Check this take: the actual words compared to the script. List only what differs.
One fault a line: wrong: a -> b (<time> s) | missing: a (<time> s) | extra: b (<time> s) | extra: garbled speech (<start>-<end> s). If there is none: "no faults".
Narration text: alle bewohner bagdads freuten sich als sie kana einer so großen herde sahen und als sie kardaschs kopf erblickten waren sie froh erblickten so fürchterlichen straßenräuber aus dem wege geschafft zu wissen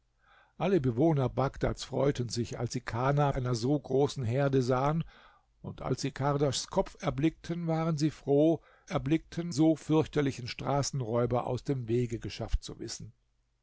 no faults